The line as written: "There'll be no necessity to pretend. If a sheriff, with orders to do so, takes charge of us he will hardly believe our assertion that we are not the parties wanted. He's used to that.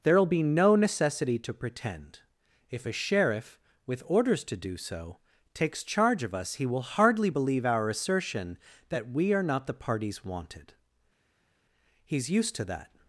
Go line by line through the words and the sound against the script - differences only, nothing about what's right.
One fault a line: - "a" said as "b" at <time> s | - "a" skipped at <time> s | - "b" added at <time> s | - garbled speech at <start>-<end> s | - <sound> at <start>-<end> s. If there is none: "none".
none